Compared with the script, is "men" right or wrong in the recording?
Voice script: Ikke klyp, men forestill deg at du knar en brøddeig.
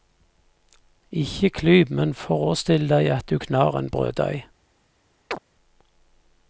right